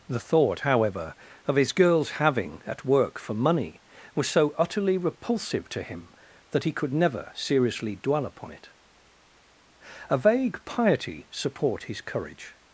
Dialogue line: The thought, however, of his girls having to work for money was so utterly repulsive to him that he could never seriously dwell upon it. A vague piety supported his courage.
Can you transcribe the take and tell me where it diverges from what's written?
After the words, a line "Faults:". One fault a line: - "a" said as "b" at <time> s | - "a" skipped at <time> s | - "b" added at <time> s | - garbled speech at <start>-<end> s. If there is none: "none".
The thought, however, of his girls having at work for money was so utterly repulsive to him that he could never seriously dwell upon it. A vague piety support his courage.
Faults:
- "to" said as "at" at 2.6 s
- "supported" said as "support" at 11.3 s